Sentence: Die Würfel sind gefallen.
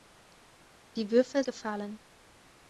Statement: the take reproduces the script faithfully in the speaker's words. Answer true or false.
false